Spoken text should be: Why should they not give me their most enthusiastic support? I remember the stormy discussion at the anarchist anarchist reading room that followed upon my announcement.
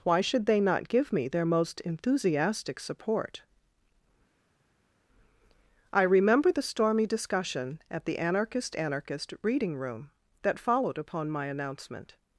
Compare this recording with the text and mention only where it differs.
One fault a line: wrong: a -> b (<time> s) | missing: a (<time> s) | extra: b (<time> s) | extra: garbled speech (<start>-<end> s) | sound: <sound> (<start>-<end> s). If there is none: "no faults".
no faults